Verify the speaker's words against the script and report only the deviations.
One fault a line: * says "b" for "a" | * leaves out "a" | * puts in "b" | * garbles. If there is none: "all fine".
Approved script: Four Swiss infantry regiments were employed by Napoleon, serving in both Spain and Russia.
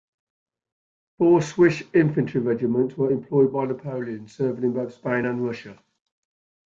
all fine